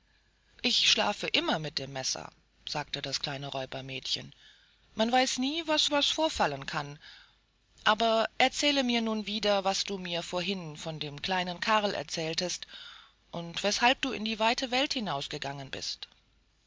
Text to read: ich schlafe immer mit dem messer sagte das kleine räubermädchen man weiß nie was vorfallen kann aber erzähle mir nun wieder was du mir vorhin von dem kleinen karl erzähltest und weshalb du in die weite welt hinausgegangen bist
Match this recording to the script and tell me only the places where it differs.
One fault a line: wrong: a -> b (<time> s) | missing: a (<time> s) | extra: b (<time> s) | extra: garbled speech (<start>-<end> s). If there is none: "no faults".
extra: was (5.9 s)